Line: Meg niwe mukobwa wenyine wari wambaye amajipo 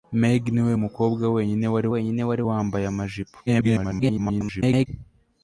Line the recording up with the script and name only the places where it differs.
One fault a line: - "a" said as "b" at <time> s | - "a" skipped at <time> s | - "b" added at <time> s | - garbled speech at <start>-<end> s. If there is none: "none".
- "wenyine wari" added at 1.9 s
- garbled speech at 3.5-4.9 s